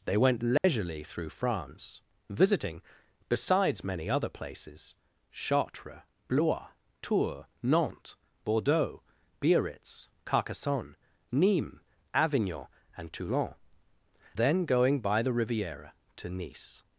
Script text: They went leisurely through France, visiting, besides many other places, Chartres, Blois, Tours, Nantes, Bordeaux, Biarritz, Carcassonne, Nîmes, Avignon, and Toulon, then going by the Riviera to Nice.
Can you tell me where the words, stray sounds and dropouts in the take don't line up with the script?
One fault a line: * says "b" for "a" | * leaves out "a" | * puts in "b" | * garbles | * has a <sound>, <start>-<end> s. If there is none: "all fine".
* has a dropout, 0.6-0.6 s